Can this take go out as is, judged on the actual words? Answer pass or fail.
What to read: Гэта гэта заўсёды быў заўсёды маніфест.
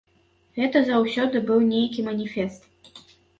fail